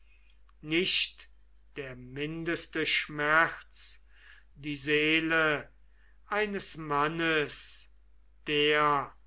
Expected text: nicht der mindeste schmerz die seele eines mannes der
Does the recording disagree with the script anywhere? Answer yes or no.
no